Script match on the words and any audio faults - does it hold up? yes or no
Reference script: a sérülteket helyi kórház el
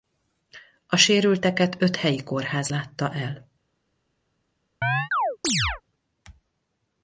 no